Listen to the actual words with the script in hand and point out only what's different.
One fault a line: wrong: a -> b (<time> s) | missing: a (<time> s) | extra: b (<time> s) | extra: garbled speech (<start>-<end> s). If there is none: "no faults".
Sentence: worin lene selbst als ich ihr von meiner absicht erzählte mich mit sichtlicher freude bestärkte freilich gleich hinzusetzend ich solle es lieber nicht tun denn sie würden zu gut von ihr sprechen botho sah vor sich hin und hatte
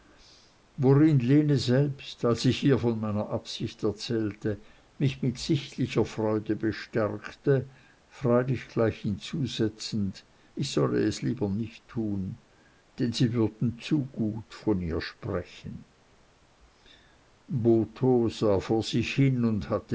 no faults